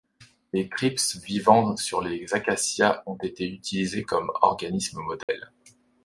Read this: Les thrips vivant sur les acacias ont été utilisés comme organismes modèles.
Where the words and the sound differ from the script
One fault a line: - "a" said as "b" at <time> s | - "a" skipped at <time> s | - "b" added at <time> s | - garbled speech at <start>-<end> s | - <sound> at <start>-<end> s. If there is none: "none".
- dropout at 5.2-5.3 s